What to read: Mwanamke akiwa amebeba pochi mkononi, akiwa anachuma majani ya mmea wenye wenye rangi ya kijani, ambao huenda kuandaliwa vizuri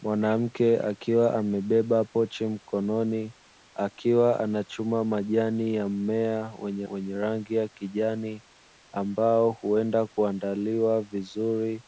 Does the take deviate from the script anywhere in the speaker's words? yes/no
no